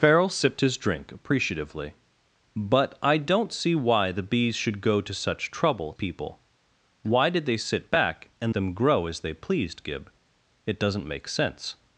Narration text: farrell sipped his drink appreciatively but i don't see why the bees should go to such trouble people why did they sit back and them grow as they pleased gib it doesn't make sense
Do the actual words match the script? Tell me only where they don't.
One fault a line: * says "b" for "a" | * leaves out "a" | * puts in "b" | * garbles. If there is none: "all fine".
all fine